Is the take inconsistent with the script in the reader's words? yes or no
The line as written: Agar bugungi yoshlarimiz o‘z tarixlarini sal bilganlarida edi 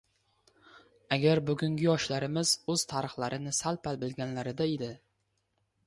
yes